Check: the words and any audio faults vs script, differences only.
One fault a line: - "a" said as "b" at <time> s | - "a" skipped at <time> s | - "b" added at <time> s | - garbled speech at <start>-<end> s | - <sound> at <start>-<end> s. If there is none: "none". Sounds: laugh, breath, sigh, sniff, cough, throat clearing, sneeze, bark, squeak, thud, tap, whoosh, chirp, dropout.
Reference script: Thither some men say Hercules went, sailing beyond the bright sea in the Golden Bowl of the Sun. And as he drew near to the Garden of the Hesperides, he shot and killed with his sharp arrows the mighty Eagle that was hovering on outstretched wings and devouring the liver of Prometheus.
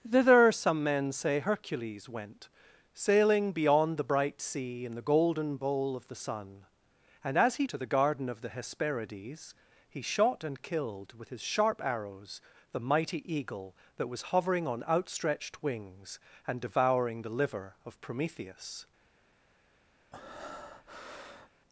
- "drew near" skipped at 7.7 s
- breath at 20.1-21.5 s